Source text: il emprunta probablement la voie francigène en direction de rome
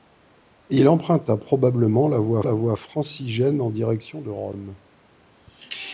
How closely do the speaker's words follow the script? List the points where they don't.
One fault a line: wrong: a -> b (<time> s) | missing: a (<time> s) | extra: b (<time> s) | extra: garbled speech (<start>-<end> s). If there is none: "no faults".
extra: la voie (2.4 s)